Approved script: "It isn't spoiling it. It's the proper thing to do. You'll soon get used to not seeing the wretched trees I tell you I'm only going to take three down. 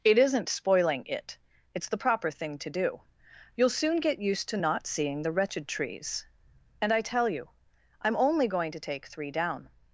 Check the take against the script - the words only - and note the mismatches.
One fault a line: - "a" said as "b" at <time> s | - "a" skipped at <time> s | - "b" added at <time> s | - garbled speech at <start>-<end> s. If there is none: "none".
- "and" added at 6.8 s